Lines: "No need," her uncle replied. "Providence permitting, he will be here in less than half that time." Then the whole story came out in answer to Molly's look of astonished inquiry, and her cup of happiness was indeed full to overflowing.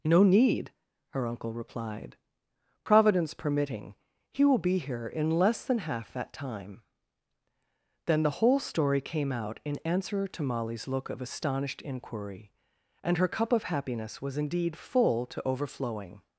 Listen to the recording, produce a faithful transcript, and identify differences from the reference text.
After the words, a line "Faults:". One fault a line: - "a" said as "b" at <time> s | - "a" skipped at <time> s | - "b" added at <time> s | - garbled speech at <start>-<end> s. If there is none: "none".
"No need," her uncle replied. "Providence permitting, he will be here in less than half that time." Then the whole story came out in answer to Molly's look of astonished inquiry, and her cup of happiness was indeed full to overflowing.
Faults:
none